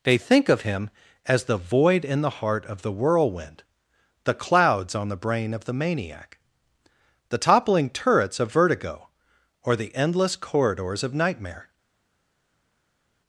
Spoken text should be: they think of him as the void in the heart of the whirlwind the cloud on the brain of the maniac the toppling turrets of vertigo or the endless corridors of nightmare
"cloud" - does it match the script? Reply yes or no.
no